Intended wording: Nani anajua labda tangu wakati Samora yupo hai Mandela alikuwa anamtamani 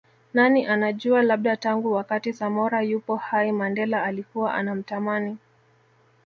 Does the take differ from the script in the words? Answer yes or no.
no